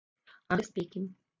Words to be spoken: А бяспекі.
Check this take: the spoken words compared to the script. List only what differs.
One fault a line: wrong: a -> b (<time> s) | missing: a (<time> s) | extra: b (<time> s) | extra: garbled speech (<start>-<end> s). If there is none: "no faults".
no faults